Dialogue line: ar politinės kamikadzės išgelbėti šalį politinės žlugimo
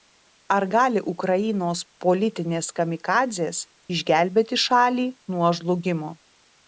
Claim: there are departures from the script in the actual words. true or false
true